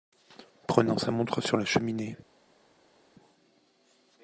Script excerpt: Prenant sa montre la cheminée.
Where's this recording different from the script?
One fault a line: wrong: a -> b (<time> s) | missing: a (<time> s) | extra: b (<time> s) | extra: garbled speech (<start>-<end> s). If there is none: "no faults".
extra: sur (1.4 s)